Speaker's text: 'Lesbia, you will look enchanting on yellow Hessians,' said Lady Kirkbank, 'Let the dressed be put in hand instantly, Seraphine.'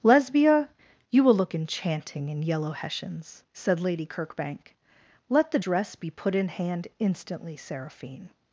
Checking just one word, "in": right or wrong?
right